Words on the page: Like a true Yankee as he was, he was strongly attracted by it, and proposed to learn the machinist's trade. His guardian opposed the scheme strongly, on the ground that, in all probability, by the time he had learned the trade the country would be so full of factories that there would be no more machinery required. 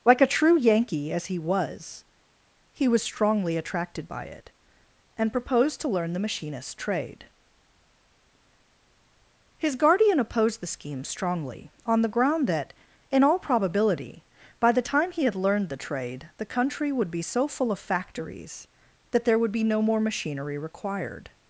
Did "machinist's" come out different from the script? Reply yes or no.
no